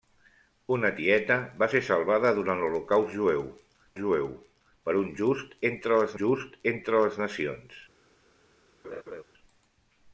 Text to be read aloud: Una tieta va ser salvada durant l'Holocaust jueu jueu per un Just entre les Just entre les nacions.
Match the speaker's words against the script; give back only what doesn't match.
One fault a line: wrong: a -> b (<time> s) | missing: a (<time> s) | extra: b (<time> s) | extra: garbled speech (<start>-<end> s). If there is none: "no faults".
no faults